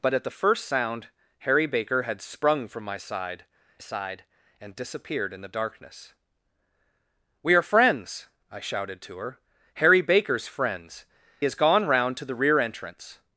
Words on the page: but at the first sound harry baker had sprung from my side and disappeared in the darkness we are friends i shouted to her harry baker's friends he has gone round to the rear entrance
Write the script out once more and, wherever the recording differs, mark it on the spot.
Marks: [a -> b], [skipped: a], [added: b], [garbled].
but at the first sound harry baker had sprung from my side [added: side] and disappeared in the darkness we are friends i shouted to her harry baker's friends [skipped: he] has gone round to the rear entrance